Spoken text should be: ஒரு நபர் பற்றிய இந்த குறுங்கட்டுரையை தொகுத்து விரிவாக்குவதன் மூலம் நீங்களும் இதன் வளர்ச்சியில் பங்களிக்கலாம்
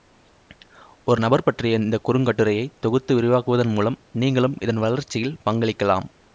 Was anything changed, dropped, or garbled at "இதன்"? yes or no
no